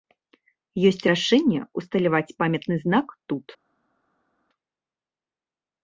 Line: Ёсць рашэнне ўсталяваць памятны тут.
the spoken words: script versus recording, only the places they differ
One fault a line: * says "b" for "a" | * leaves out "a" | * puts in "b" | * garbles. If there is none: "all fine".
* puts in "знак"